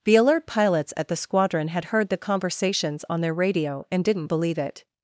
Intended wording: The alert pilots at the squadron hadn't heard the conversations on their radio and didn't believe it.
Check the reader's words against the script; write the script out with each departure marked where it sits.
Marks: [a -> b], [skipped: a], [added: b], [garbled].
The alert pilots at the squadron [hadn't -> had] heard the conversations on their radio and didn't believe it.